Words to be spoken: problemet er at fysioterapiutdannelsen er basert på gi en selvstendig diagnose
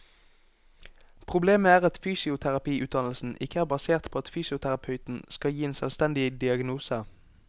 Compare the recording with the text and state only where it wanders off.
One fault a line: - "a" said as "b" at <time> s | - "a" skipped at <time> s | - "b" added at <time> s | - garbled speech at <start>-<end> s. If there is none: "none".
- "ikke" added at 3.4 s
- "at fysioterapeuten skal" added at 4.2 s